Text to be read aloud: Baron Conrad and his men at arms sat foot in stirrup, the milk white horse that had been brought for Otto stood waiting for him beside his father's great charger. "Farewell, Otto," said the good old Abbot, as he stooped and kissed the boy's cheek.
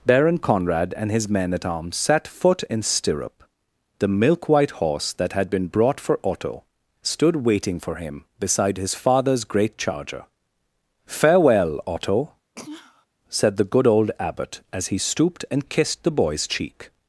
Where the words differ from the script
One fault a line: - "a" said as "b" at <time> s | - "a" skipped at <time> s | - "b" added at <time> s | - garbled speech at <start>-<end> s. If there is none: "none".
none